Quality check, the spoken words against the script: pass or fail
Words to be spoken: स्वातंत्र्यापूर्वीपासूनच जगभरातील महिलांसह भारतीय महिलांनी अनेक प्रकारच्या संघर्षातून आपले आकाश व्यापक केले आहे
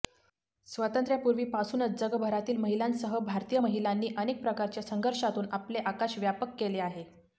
pass